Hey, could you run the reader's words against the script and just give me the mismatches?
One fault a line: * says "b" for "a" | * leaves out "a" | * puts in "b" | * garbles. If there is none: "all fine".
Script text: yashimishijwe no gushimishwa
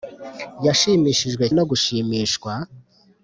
all fine